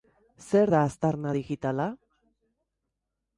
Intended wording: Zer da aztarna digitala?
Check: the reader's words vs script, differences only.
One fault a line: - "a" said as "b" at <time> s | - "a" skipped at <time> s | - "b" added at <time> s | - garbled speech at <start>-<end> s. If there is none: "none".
none